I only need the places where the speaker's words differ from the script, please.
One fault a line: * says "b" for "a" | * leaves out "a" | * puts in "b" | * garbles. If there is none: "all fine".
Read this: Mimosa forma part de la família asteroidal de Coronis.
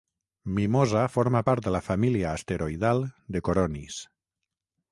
all fine